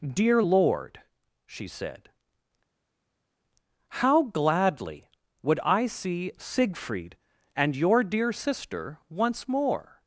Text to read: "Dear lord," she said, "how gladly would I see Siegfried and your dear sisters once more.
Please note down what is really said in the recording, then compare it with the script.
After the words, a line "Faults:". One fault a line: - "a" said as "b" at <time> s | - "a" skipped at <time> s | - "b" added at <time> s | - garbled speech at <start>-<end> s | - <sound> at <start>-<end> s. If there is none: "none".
"Dear lord," she said, "how gladly would I see Siegfried and your dear sister once more.
Faults:
- "sisters" said as "sister" at 8.3 s